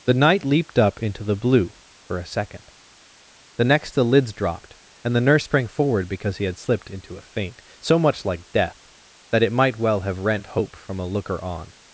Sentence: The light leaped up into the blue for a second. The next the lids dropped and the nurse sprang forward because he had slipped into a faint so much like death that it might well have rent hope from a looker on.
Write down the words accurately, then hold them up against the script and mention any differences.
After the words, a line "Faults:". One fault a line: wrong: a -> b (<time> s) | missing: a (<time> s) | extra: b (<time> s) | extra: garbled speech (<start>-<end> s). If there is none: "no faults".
The night leaped up into the blue for a second. The next the lids dropped and the nurse sprang forward because he had slipped into a faint so much like death that it might well have rent hope from a looker on.
Faults:
wrong: light -> night (0.1 s)